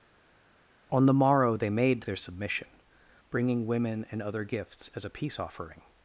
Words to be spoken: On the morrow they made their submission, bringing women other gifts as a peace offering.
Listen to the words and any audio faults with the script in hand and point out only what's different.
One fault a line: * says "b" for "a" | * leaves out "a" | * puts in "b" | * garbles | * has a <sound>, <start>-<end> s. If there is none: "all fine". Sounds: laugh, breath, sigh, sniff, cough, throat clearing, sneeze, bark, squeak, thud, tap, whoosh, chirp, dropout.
* puts in "and"